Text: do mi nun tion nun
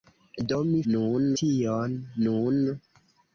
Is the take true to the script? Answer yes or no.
yes